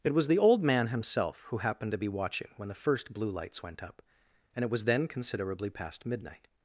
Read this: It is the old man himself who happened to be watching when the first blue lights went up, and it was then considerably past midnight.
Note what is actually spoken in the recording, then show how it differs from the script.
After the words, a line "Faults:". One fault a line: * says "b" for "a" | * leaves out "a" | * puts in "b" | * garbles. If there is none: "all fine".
It was the old man himself who happened to be watching when the first blue lights went up, and it was then considerably past midnight.
Faults:
* says "was" for "is"